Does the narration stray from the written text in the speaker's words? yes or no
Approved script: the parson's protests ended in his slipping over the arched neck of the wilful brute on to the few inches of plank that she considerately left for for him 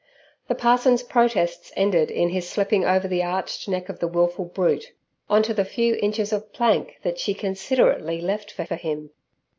no